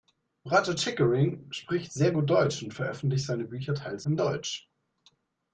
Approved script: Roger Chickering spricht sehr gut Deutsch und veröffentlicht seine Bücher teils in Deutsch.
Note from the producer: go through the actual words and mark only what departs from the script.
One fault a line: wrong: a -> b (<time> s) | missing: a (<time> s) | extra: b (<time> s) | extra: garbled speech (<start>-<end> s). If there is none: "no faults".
no faults